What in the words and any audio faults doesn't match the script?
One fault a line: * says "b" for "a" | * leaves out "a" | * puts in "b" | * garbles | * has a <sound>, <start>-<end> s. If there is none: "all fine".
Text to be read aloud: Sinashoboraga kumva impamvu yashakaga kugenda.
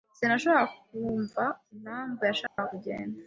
* has a dropout, 2.5-2.6 s